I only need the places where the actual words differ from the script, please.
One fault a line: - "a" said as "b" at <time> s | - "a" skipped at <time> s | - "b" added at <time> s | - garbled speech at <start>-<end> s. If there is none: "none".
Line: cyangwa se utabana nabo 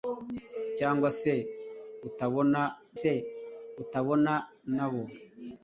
- "se utabana" added at 3.0 s